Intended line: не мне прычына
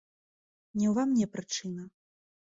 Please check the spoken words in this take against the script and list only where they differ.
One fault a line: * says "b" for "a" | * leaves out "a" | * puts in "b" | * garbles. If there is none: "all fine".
* puts in "ўва"